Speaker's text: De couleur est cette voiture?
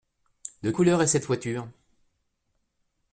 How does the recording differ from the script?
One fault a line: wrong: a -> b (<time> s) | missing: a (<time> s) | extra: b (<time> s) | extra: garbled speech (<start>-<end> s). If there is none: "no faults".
no faults